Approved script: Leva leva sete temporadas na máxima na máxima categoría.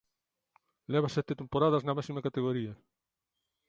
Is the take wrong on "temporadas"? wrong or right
right